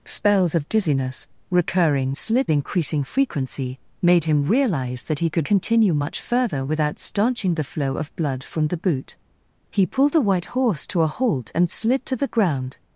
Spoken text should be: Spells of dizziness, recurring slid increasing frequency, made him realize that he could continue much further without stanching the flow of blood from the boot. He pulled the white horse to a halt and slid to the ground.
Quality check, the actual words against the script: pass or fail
pass